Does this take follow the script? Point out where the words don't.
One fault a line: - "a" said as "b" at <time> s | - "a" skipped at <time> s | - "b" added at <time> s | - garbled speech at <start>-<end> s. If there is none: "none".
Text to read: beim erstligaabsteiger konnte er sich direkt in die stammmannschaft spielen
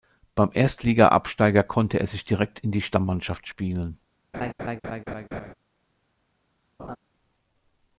none